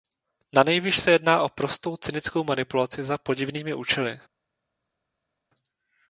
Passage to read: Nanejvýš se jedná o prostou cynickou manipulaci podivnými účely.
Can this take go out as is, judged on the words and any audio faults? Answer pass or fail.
fail